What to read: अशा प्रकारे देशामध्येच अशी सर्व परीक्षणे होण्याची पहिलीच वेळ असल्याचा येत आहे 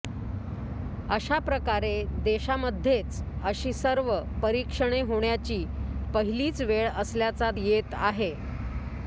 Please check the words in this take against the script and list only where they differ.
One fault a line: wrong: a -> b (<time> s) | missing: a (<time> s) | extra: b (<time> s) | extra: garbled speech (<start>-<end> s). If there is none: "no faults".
no faults